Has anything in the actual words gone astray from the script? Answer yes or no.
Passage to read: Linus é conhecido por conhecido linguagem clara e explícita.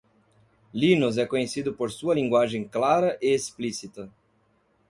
yes